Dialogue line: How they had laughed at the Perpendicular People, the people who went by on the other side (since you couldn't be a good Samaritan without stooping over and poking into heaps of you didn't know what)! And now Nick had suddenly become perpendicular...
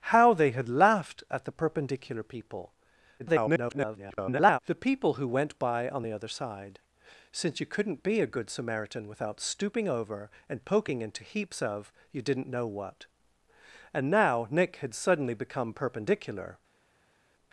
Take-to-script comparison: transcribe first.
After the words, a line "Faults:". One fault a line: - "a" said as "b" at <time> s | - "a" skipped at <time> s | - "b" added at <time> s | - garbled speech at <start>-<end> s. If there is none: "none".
How they had laughed at the Perpendicular People, [garbled] the people who went by on the other side (since you couldn't be a good Samaritan without stooping over and poking into heaps of you didn't know what)! And now Nick had suddenly become perpendicular...
Faults:
- garbled speech at 3.2-4.6 s